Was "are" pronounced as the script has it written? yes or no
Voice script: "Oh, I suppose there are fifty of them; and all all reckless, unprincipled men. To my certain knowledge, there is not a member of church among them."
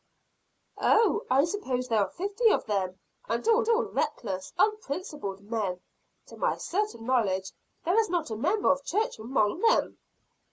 yes